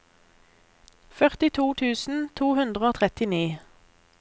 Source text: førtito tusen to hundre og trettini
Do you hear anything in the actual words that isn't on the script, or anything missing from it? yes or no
no